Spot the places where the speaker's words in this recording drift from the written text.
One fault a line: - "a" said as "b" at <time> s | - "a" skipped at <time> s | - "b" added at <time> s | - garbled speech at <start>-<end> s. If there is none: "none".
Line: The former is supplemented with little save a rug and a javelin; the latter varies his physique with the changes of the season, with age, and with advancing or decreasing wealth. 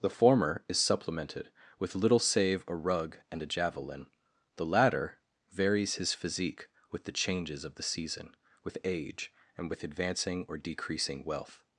none